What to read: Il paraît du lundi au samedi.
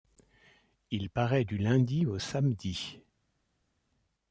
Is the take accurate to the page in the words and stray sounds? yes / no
yes